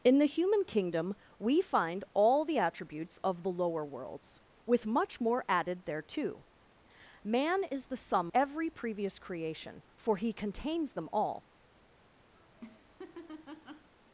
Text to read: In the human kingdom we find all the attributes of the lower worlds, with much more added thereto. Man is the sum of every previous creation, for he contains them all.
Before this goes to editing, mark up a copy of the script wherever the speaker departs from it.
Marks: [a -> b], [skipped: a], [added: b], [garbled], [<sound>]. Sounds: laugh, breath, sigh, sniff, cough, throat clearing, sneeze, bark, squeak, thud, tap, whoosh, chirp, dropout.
In the human kingdom we find all the attributes of the lower worlds, with much more added thereto. Man is the sum [skipped: of] every previous creation, for he contains them all. [laugh]